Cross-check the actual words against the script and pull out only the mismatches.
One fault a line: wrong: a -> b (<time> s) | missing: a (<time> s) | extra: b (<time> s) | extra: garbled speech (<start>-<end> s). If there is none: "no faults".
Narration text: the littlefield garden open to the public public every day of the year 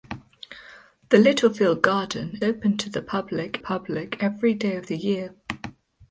no faults